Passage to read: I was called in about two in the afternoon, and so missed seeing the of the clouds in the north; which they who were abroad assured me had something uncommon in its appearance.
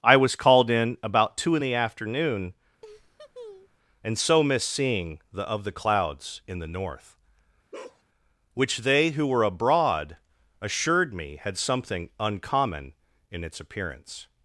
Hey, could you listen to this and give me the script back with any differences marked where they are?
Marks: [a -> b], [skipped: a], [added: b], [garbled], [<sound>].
I was called in about two in the afternoon, [laugh] and so missed seeing the of the clouds in the north; [bark] which they who were abroad assured me had something uncommon in its appearance.